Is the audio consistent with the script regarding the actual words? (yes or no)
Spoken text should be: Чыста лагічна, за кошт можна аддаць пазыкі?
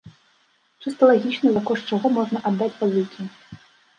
no